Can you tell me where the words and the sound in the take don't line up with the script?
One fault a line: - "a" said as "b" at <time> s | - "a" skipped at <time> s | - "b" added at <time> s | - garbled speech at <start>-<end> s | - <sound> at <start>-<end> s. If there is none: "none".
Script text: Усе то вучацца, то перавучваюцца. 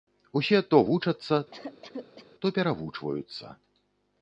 - cough at 1.5-2.3 s